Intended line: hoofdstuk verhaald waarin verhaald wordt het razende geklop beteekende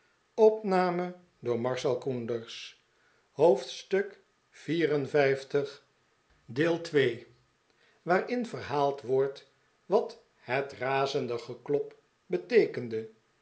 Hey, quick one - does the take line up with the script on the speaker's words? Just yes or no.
no